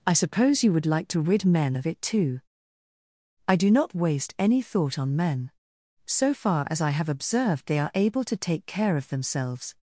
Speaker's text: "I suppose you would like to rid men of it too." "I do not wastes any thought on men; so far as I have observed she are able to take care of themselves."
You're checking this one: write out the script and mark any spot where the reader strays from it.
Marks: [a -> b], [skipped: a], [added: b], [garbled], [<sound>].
"I suppose you would like to rid men of it too." "I do not [wastes -> waste] any thought on men; so far as I have observed [she -> they] are able to take care of themselves."